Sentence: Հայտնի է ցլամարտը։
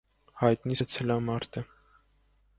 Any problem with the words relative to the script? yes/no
no